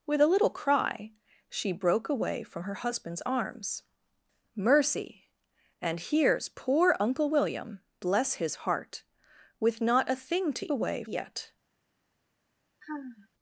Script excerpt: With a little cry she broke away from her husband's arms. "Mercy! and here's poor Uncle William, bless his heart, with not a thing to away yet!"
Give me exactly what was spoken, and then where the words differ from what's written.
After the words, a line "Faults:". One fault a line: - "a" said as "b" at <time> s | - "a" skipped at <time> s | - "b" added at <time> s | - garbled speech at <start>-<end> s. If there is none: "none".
With a little cry she broke away from her husband's arms. "Mercy! and here's poor Uncle William, bless his heart, with not a thing to away yet!"
Faults:
none